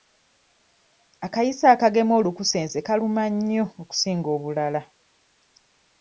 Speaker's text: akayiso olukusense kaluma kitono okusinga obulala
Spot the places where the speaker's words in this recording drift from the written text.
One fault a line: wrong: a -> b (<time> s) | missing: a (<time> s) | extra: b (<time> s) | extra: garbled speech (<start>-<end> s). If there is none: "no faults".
extra: akagema (1.7 s)
wrong: kitono -> nnyo (3.3 s)